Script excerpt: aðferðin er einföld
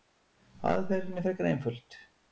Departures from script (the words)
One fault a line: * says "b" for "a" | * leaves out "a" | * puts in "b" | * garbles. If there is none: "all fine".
* puts in "frekar"